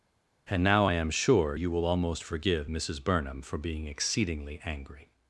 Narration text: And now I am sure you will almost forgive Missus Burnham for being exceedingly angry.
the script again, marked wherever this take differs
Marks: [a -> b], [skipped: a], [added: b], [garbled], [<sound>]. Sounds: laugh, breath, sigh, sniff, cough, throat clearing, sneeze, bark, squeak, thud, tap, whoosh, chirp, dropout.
And now I am sure you will almost forgive Missus Burnham for being exceedingly angry.